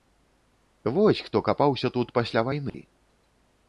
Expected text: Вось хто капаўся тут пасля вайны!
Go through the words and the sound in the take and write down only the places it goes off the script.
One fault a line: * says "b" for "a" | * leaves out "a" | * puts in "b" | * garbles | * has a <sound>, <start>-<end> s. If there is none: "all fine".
* has a dropout, 2.7-2.7 s